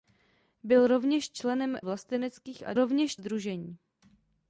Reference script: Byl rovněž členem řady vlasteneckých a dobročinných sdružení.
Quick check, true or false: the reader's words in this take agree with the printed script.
false